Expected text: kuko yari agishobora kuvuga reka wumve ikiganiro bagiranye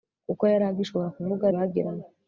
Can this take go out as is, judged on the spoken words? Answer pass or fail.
fail